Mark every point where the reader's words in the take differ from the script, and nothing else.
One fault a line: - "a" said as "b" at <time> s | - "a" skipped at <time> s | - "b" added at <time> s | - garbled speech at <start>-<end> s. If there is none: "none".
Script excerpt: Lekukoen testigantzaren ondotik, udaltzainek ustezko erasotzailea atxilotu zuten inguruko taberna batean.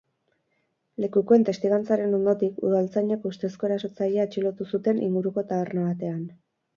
none